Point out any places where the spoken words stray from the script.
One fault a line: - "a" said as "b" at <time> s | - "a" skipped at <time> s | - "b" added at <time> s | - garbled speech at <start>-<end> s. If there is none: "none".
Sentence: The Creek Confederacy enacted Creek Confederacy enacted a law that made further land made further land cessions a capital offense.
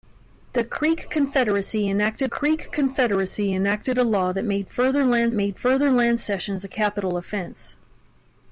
none